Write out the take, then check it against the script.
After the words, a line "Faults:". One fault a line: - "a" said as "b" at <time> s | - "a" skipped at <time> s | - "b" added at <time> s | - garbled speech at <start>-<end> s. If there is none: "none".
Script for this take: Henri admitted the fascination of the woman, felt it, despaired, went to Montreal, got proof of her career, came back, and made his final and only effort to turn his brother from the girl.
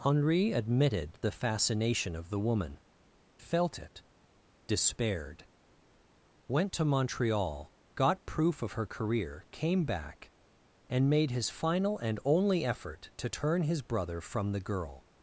Henri admitted the fascination of the woman, felt it, despaired, went to Montreal, got proof of her career, came back, and made his final and only effort to turn his brother from the girl.
Faults:
none